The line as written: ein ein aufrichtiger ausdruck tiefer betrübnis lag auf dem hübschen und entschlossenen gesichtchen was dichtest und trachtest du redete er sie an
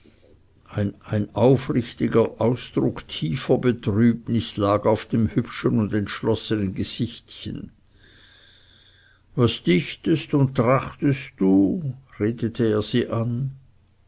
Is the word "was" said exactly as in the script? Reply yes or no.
yes